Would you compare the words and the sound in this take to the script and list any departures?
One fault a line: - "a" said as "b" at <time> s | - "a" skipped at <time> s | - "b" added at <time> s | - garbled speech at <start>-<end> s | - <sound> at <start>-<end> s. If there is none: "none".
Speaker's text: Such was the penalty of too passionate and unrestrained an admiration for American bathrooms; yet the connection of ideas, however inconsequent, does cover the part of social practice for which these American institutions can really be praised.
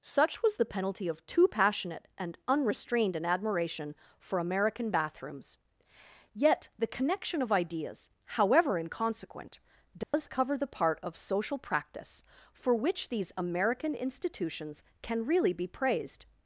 - dropout at 10.0-10.1 s